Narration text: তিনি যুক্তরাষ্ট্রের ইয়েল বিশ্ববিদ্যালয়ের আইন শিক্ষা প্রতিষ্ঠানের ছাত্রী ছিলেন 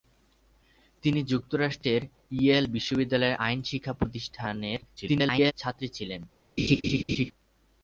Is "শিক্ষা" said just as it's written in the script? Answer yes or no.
yes